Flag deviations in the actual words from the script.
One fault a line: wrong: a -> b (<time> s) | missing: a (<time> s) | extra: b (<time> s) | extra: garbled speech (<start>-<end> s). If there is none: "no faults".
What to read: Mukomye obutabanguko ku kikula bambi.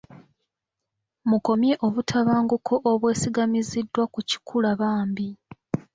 extra: obwesigamiziddwa (2.9 s)